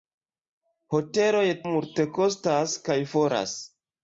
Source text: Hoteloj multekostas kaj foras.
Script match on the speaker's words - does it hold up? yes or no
yes